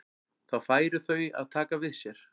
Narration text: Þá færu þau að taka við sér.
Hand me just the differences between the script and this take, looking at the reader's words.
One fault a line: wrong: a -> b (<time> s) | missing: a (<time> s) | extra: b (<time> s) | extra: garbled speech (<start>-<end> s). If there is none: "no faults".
no faults